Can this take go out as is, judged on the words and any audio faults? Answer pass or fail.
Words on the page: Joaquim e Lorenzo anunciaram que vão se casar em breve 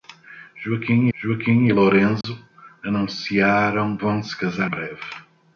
fail